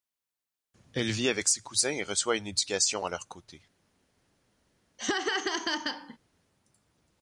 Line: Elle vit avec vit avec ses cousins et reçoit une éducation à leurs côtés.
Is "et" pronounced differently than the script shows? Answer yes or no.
no